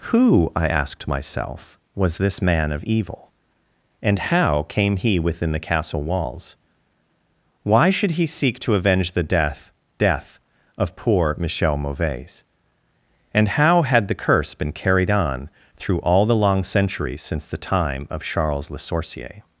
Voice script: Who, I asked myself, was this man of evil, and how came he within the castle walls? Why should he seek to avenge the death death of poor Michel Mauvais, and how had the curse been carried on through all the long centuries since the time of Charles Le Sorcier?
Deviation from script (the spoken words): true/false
false